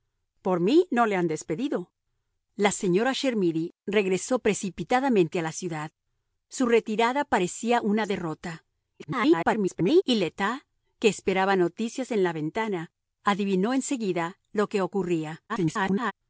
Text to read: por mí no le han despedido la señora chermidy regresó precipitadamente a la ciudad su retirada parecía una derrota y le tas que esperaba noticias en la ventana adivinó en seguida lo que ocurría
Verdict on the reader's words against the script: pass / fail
fail